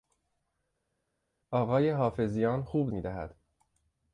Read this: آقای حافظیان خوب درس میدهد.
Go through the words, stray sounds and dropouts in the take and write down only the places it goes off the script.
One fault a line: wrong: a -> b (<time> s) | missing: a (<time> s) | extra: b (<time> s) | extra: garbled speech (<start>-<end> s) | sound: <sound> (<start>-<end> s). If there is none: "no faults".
missing: درس (2.9 s)